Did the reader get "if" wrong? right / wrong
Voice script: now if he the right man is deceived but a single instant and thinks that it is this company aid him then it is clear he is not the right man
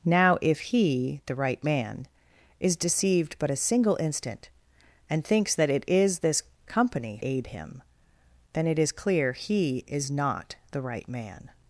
right